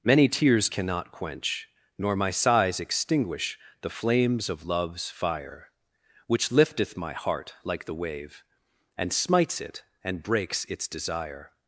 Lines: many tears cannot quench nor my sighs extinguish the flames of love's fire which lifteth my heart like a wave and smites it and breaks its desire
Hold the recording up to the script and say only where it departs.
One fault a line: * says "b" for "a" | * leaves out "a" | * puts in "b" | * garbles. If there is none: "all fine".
* says "the" for "a"